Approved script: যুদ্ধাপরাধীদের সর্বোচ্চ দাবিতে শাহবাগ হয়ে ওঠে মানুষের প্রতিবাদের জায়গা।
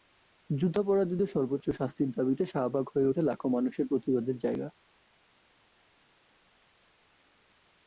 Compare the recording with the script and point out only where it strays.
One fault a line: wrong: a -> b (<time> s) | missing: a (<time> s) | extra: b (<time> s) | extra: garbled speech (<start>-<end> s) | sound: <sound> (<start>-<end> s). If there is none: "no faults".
extra: শাস্তির (1.7 s)
extra: লাখো (3.2 s)